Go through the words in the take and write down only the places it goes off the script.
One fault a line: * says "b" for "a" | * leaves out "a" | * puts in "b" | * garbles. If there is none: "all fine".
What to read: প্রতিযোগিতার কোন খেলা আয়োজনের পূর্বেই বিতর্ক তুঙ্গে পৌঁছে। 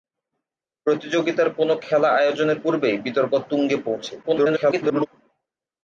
* garbles